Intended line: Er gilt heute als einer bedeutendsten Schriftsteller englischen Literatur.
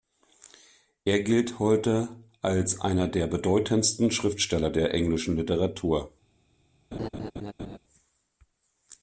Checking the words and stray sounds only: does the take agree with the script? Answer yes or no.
no